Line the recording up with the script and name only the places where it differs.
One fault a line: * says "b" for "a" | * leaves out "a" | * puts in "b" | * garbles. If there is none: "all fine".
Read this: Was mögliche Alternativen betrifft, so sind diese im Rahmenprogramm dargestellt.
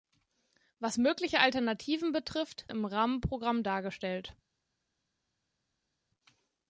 * leaves out "so sind diese"